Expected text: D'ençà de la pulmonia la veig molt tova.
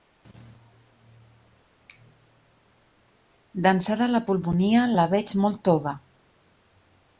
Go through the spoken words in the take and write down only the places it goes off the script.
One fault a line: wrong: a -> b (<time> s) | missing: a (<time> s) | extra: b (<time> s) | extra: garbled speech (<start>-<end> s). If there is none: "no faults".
no faults